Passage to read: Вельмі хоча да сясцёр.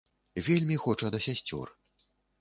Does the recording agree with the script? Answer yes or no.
yes